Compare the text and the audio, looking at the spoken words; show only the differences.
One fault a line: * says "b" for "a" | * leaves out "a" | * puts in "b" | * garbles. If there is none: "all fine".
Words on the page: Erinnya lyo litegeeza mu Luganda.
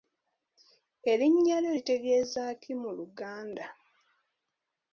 * puts in "ki"